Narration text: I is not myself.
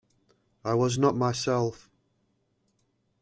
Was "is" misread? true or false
true